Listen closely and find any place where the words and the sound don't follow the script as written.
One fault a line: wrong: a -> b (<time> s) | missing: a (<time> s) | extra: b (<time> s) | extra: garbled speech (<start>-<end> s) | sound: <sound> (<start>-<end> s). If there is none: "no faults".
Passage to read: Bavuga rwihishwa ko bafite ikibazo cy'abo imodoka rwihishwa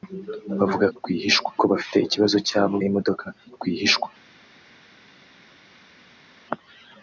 no faults